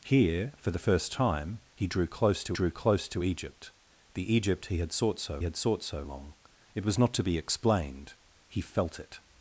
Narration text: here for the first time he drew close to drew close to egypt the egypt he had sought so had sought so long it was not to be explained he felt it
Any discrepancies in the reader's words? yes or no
no